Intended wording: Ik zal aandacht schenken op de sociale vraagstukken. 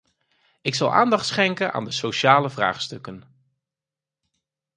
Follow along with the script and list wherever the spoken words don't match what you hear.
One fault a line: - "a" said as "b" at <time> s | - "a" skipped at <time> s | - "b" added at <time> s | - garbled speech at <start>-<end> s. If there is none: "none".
- "op" said as "aan" at 1.7 s